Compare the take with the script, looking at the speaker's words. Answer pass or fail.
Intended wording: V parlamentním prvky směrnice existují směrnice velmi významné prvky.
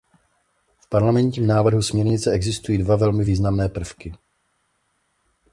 fail